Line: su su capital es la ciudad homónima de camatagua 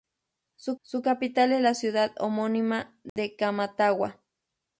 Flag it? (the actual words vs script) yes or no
no